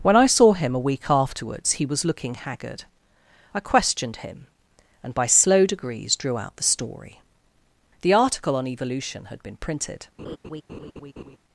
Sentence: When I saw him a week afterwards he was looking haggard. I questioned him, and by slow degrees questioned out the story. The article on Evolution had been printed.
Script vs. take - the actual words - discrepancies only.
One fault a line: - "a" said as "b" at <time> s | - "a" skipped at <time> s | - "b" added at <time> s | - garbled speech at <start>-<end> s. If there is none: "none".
- "questioned" said as "drew" at 6.2 s